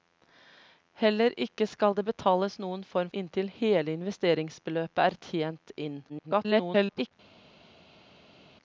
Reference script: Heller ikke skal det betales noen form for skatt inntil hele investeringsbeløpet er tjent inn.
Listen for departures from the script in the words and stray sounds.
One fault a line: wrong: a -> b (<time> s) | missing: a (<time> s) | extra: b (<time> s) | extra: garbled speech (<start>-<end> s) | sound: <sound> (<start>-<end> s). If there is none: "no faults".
missing: for skatt (3.1 s)
extra: garbled speech (6.1-7.1 s)